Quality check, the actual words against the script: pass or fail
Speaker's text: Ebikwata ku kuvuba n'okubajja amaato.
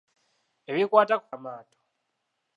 fail